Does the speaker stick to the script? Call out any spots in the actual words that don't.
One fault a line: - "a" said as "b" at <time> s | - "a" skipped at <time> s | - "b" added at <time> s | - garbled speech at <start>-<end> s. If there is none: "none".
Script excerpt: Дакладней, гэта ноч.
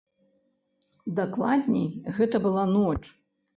- "была" added at 2.5 s